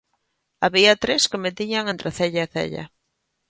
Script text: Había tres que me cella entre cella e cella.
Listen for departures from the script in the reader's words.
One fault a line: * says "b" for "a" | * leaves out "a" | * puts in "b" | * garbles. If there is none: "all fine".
* says "tiñan" for "cella"